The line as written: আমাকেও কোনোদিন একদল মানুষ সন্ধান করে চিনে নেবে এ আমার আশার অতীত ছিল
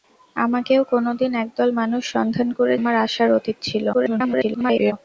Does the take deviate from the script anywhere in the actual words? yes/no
yes